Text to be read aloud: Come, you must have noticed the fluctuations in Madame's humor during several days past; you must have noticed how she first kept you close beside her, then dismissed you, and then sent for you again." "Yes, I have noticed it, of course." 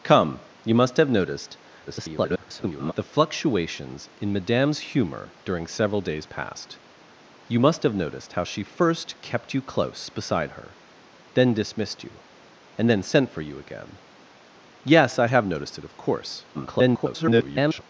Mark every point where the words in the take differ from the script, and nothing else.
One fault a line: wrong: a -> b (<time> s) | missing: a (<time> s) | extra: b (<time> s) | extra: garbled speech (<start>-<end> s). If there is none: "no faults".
extra: garbled speech (1.9-2.9 s)
extra: garbled speech (16.5-17.8 s)